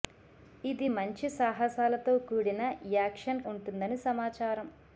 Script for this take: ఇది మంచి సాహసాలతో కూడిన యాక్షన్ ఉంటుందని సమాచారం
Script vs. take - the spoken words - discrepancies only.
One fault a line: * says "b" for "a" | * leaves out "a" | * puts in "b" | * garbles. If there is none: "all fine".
all fine